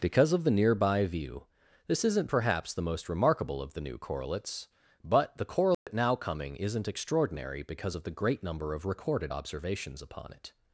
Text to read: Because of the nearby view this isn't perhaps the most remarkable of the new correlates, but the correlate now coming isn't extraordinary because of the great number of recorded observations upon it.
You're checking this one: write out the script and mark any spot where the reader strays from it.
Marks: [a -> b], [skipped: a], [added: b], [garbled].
Because of the nearby view this isn't perhaps the most remarkable of the new correlates, but the correlate now coming isn't extraordinary because of the great number of recorded observations upon it.